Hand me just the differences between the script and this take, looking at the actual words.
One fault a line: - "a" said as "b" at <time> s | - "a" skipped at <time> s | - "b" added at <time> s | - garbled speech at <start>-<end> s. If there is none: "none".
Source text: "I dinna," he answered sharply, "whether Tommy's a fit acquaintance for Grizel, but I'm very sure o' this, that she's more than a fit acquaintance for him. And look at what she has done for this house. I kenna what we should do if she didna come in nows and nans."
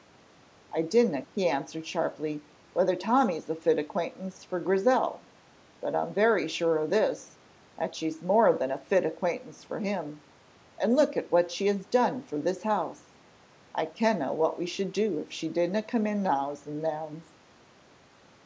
none